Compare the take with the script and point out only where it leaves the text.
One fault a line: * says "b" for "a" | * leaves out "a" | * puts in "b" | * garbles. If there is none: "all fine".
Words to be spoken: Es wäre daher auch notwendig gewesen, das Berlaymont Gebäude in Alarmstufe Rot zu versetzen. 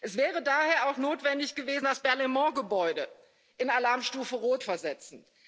* leaves out "zu"